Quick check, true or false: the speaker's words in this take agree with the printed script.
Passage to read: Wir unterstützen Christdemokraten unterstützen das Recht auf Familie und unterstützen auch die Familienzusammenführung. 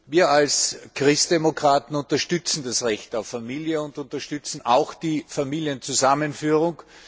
false